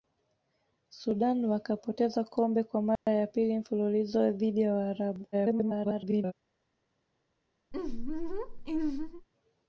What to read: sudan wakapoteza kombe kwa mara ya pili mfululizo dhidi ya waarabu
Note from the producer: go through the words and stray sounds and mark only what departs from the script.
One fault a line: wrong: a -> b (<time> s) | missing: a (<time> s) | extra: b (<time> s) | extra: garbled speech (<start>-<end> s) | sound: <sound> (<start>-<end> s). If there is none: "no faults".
sound: dropout (3.0-3.1 s)
extra: garbled speech (5.3-6.3 s)
sound: laugh (7.7-9.3 s)